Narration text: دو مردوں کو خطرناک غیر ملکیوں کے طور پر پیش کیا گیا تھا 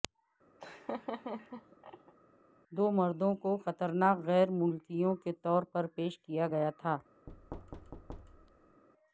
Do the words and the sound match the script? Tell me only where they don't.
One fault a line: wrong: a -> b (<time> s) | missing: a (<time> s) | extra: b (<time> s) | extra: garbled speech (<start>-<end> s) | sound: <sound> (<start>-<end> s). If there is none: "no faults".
sound: laugh (0.6-2.1 s)
sound: thud (7.3-8.8 s)